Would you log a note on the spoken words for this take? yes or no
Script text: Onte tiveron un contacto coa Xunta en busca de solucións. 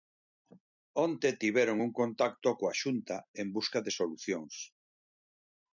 no